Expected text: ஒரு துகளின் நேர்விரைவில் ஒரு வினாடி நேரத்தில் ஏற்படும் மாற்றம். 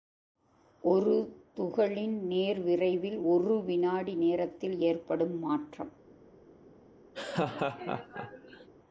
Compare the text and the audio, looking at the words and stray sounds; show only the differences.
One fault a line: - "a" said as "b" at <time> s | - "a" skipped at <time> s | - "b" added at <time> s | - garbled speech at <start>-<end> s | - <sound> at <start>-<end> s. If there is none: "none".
- laugh at 7.1-8.7 s